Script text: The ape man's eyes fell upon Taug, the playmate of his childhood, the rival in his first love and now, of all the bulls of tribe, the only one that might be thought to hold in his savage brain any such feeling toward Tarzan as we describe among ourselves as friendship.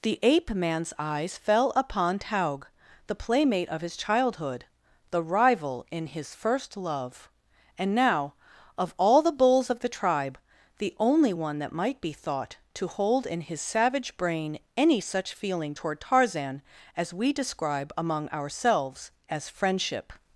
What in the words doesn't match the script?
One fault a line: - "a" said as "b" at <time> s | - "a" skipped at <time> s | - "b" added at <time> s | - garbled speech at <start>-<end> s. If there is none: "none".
- "the" added at 9.8 s